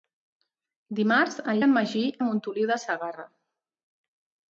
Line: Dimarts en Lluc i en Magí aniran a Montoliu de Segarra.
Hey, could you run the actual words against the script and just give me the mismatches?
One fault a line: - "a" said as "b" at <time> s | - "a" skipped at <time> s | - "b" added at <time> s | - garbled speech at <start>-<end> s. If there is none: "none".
- "Lluc" skipped at 1.6 s
- "aniran" skipped at 2.0 s